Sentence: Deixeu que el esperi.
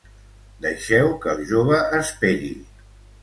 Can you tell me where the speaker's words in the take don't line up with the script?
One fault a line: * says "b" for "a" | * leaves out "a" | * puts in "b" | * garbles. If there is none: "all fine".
* puts in "jove"